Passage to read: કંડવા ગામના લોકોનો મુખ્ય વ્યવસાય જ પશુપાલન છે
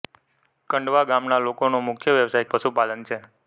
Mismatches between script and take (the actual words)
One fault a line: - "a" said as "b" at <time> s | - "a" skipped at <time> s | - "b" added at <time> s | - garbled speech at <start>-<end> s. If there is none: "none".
none